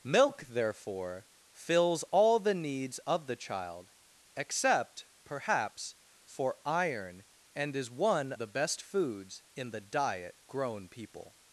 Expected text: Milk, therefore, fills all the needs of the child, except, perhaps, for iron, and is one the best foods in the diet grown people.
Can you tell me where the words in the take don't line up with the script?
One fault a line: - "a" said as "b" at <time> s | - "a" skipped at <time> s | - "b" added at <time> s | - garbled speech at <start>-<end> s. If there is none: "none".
none